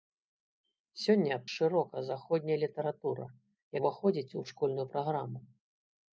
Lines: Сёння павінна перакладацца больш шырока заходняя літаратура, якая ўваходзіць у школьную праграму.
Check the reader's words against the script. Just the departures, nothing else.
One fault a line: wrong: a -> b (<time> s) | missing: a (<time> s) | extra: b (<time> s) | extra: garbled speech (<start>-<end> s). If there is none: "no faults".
missing: павінна перакладацца больш (1.4 s)
missing: якая (3.3 s)